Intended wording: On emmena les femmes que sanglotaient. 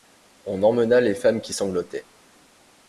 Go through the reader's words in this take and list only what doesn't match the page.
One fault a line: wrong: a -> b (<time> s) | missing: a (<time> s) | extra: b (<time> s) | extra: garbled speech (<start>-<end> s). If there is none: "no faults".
wrong: que -> qui (1.4 s)